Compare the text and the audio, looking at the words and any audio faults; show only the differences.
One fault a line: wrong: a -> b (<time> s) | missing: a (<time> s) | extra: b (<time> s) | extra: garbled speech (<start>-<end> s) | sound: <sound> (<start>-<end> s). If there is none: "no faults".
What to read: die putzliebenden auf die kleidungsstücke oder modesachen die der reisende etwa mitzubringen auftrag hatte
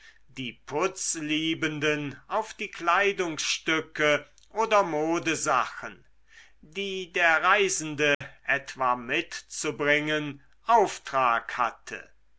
sound: dropout (8.1-8.2 s)